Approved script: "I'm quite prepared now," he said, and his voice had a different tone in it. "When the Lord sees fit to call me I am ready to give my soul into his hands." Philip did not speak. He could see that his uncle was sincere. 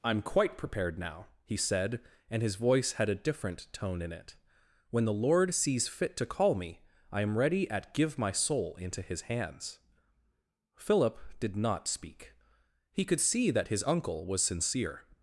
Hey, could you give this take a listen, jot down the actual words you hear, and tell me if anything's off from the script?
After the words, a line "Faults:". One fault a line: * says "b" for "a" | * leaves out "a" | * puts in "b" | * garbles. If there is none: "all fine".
"I'm quite prepared now," he said, and his voice had a different tone in it. "When the Lord sees fit to call me I am ready at give my soul into his hands." Philip did not speak. He could see that his uncle was sincere.
Faults:
* says "at" for "to"